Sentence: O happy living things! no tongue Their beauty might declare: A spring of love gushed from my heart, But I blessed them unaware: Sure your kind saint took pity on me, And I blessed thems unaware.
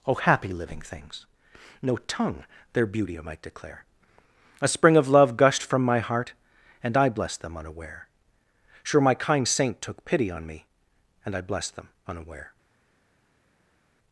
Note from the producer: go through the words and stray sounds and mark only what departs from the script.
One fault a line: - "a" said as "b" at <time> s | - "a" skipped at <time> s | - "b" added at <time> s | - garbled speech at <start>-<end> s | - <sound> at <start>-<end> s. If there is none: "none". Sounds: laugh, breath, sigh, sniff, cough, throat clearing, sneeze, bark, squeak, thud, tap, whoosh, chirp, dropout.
- "But" said as "And" at 6.8 s
- "your" said as "my" at 9.0 s
- "thems" said as "them" at 11.8 s